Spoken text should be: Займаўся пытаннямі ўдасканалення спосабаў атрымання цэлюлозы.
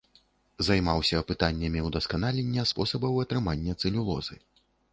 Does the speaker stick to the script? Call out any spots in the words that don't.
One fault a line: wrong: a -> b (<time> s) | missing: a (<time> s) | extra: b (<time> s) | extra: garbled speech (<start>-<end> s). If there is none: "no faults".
no faults